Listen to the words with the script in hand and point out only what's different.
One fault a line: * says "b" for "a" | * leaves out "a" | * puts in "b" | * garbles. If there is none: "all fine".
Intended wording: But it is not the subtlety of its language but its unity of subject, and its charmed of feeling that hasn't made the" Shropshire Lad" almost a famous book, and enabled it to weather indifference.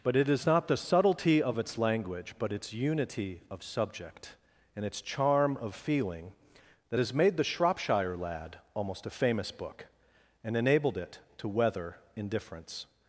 * says "charm" for "charmed"
* says "has" for "hasn't"